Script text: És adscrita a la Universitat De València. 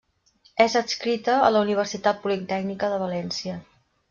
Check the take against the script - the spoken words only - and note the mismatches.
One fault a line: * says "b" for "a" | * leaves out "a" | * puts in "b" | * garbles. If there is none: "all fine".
* puts in "Politècnica"